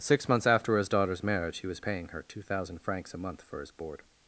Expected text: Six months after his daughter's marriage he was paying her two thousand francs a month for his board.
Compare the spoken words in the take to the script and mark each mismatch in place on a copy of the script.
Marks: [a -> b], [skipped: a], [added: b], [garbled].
Six months after his daughter's marriage he was paying her two thousand francs a month for his board.